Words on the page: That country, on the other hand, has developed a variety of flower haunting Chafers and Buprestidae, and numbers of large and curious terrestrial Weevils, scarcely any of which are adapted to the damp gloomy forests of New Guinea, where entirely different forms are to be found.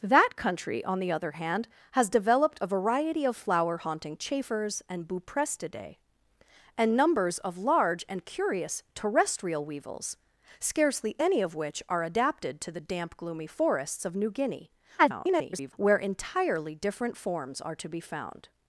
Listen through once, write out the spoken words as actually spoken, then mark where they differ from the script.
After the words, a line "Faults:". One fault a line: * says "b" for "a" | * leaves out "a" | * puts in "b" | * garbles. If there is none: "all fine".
That country, on the other hand, has developed a variety of flower haunting Chafers and Buprestidae, and numbers of large and curious terrestrial Weevils, scarcely any of which are adapted to the damp gloomy forests of New Guinea, [garbled] where entirely different forms are to be found.
Faults:
* garbles